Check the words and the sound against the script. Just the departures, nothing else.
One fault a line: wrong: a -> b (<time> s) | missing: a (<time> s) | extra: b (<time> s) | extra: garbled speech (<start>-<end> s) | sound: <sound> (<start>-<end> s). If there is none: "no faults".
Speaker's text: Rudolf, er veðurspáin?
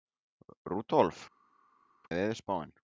no faults